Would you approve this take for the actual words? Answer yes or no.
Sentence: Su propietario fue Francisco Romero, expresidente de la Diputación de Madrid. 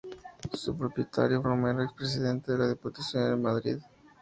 no